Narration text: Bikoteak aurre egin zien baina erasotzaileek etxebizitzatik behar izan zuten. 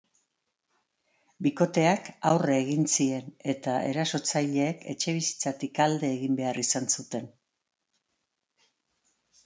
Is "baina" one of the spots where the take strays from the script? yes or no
yes